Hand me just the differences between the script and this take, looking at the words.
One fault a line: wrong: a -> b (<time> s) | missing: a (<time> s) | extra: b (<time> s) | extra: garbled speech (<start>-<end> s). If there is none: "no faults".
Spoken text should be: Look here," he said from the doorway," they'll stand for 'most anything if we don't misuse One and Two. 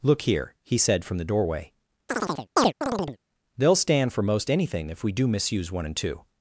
wrong: don't -> do (5.1 s)